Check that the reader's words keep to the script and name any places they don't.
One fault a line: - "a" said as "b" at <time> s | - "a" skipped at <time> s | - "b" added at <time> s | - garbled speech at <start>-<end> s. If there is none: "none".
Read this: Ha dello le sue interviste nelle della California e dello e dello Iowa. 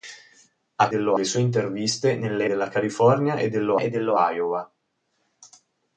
none